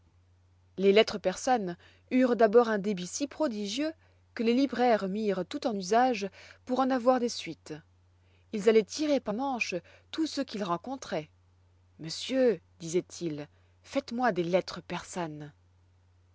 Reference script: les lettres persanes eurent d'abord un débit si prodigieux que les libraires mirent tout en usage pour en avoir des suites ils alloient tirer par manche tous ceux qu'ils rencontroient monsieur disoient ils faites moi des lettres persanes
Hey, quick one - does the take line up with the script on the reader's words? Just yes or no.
yes